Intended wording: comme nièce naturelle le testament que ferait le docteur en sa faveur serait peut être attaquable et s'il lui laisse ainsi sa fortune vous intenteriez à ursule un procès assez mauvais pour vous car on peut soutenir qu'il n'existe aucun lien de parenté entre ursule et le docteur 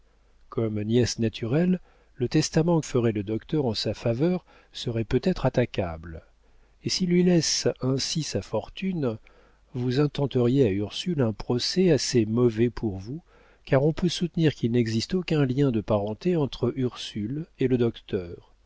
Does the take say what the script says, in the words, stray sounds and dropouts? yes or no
no